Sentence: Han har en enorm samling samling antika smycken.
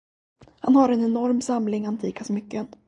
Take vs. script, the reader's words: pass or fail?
fail